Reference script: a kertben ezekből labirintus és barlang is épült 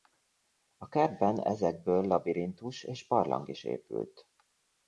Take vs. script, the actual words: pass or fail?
pass